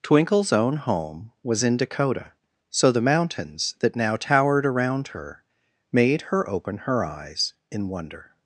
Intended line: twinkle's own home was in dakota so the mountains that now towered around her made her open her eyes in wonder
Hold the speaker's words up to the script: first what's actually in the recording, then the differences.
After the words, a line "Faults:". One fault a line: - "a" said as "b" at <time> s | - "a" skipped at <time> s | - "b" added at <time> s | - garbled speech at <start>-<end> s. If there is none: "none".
twinkle's own home was in dakota so the mountains that now towered around her made her open her eyes in wonder
Faults:
none